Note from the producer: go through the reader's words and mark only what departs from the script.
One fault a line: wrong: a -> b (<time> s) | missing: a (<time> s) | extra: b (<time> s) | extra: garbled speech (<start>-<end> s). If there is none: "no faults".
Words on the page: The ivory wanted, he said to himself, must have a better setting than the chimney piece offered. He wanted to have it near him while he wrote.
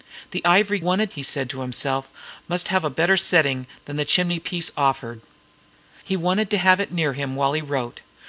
no faults